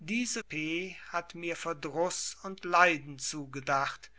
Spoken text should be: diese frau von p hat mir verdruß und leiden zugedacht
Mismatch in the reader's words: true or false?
true